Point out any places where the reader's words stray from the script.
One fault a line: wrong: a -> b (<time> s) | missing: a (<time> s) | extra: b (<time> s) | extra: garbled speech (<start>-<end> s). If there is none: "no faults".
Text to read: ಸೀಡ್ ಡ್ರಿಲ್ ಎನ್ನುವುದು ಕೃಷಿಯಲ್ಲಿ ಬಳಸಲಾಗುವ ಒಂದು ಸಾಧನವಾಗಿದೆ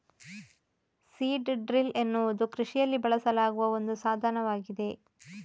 no faults